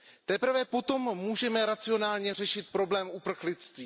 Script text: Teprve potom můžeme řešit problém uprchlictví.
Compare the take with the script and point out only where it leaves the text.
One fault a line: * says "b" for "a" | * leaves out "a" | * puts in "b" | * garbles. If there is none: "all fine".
* puts in "racionálně"